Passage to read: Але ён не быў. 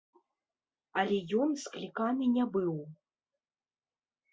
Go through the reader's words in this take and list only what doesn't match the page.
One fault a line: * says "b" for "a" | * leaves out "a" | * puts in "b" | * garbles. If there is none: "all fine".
* puts in "скліканы"